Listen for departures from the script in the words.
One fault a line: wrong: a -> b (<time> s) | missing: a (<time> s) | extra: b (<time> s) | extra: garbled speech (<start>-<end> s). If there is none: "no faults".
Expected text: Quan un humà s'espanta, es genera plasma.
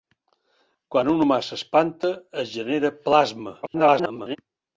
extra: garbled speech (3.6-4.4 s)